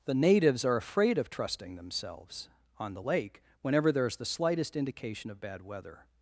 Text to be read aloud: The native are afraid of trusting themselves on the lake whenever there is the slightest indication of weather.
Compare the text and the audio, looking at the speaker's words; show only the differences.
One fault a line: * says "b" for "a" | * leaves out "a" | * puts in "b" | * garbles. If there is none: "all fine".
* says "natives" for "native"
* puts in "bad"